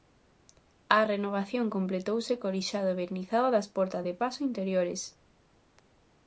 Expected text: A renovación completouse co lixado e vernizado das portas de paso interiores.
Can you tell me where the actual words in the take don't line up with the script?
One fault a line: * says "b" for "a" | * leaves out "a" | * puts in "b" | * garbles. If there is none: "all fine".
all fine